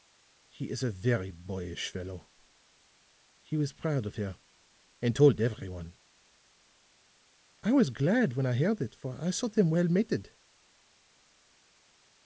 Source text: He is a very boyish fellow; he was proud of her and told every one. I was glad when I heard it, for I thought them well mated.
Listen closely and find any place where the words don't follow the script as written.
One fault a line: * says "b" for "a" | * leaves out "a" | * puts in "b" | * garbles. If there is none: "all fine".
all fine